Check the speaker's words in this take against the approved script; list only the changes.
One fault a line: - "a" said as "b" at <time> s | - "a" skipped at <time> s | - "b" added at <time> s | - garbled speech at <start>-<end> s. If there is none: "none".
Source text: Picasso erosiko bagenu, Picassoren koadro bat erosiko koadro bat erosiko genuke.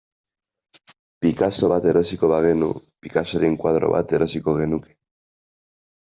- "bat" added at 1.7 s
- "koadro bat erosiko" skipped at 4.5 s